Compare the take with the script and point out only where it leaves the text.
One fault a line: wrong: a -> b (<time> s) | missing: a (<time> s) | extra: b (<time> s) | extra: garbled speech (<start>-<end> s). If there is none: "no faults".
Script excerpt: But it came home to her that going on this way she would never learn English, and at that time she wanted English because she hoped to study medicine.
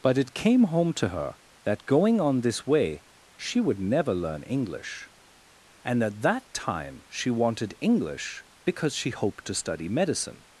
no faults